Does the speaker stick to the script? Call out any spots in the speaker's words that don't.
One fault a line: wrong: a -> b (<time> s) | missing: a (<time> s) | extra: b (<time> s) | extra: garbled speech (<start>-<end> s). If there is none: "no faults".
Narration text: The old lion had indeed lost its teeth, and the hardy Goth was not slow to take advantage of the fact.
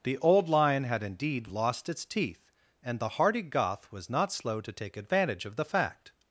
no faults